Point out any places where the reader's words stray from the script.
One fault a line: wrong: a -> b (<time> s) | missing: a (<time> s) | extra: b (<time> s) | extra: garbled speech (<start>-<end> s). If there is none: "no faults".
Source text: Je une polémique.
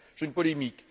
no faults